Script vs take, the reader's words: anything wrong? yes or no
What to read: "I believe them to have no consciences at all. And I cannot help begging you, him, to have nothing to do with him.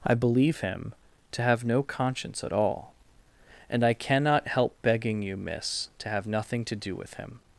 yes